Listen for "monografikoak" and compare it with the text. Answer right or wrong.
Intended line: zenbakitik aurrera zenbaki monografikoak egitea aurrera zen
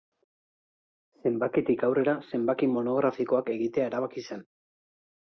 right